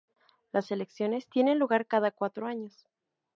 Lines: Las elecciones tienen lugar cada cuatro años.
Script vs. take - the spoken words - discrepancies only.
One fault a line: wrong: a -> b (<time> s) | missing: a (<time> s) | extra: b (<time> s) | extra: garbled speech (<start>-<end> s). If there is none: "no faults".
no faults